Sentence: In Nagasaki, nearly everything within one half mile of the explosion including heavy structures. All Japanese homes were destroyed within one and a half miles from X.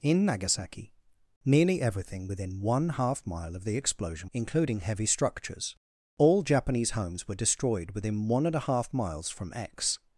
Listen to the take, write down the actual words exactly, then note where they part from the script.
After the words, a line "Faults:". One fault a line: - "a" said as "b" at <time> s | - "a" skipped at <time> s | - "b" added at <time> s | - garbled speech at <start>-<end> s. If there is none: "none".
In Nagasaki, nearly everything within one half mile of the explosion including heavy structures. All Japanese homes were destroyed within one and a half miles from X.
Faults:
none